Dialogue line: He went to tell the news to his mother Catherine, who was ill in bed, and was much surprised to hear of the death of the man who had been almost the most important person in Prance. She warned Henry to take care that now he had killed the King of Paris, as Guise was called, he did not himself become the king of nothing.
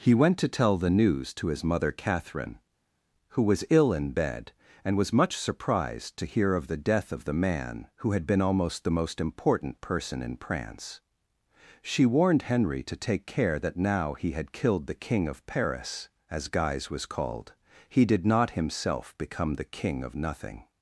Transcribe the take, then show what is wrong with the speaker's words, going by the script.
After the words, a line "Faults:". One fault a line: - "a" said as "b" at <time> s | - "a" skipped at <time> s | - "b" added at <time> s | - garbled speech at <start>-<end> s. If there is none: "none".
He went to tell the news to his mother Catherine, who was ill in bed, and was much surprised to hear of the death of the man who had been almost the most important person in Prance. She warned Henry to take care that now he had killed the King of Paris, as Guise was called, he did not himself become the king of nothing.
Faults:
none